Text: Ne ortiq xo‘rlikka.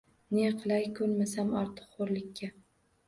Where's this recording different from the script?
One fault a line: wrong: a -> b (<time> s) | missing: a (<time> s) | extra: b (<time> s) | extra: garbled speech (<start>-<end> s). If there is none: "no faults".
extra: qilay ko‘nmasam (0.6 s)